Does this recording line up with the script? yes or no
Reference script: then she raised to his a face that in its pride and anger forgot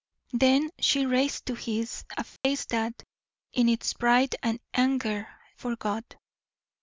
yes